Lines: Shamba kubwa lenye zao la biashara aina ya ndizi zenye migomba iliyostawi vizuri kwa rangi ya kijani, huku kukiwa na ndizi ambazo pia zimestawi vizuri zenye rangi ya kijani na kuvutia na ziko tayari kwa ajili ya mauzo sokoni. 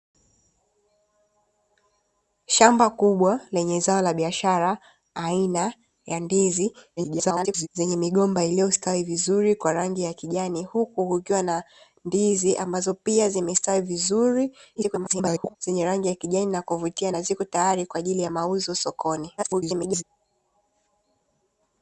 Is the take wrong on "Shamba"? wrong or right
right